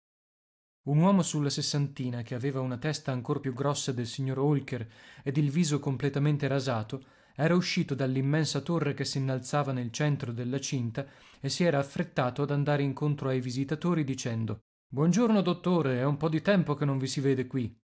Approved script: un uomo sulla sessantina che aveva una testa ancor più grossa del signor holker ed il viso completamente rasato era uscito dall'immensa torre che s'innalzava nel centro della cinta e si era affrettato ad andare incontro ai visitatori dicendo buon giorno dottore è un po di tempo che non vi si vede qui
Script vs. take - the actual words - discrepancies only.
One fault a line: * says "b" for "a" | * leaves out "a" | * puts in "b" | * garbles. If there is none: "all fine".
all fine